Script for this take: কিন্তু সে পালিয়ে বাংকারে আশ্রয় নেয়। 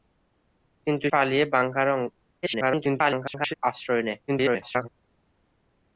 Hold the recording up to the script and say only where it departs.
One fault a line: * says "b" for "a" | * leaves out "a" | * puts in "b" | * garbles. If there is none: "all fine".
* leaves out "সে"
* garbles
* garbles